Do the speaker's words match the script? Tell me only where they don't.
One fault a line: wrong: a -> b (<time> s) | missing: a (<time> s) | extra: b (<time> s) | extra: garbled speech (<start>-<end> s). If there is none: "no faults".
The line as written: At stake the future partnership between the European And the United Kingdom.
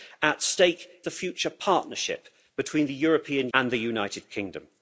no faults